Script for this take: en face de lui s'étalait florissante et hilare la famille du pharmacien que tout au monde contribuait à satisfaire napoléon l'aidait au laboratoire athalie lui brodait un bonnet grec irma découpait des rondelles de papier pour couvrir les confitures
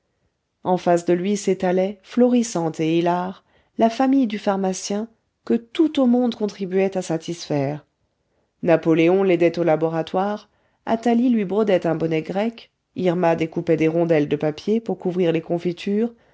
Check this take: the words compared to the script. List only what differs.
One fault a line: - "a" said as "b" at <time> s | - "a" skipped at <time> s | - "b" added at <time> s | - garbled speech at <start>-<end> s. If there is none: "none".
none